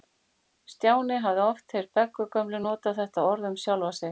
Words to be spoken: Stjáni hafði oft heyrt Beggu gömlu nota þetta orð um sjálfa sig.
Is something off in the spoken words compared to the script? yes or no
no